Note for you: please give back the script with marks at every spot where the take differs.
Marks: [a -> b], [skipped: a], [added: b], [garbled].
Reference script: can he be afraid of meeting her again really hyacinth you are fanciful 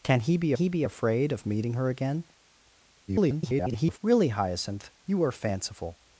can he be [added: he be] afraid of meeting her again [garbled] really hyacinth you are fanciful